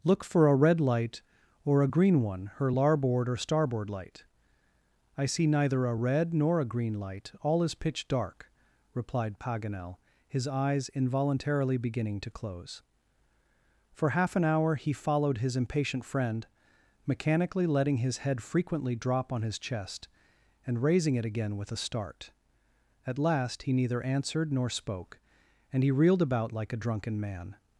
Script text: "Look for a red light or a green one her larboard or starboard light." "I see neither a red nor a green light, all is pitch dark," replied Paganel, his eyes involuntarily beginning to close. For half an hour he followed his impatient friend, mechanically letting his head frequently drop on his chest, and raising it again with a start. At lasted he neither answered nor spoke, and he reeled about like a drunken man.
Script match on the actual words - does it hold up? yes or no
no